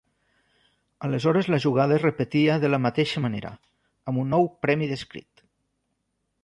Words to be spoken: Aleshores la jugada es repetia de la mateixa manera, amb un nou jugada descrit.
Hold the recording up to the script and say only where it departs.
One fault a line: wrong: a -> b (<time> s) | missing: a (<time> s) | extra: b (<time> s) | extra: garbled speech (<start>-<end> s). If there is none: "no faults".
wrong: jugada -> premi (4.7 s)